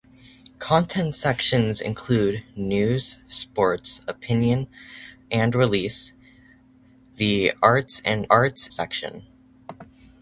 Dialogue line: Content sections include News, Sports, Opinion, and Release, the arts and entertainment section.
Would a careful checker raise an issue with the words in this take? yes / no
yes